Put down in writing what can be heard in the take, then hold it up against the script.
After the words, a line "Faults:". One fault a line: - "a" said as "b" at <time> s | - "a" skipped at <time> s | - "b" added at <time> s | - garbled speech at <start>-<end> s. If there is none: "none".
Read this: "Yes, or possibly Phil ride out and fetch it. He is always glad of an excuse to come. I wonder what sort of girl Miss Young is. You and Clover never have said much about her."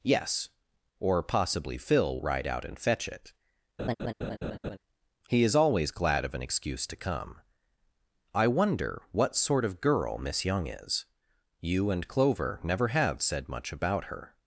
"Yes, or possibly Phil ride out and fetch it. He is always glad of an excuse to come. I wonder what sort of girl Miss Young is. You and Clover never have said much about her."
Faults:
none